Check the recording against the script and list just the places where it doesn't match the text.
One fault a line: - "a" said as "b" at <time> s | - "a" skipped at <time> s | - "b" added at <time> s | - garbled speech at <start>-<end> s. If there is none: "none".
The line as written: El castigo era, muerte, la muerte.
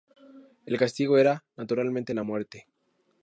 - "muerte" said as "naturalmente" at 1.6 s